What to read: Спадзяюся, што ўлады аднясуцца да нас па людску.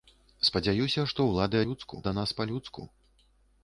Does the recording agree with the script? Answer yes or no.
no